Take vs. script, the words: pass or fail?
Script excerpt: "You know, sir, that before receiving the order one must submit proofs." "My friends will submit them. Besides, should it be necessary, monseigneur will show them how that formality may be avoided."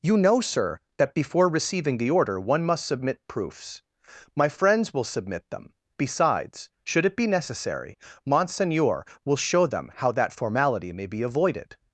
pass